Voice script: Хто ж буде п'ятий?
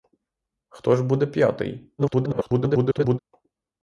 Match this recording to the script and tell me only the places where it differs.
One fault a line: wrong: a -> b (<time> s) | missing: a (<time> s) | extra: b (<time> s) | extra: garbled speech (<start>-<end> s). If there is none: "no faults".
extra: garbled speech (2.0-3.2 s)